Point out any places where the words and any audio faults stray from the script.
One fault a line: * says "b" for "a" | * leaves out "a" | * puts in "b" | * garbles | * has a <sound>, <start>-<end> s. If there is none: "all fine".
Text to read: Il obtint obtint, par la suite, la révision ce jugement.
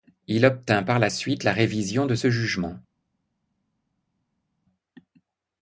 * leaves out "obtint"
* puts in "de"